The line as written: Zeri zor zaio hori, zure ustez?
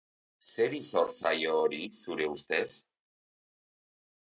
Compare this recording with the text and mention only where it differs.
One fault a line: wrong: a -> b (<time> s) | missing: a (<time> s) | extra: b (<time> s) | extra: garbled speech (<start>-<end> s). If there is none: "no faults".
no faults